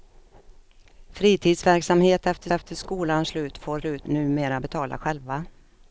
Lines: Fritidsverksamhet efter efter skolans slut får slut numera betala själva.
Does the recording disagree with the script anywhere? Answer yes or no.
no